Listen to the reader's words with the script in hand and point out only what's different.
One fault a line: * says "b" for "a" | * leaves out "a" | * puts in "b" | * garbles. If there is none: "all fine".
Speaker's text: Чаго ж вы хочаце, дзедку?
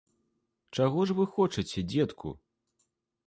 all fine